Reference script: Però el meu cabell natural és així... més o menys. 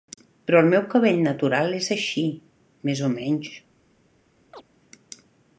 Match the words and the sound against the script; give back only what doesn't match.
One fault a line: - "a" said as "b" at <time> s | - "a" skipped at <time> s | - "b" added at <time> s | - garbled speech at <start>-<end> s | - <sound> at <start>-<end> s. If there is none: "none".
- chirp at 4.5-4.6 s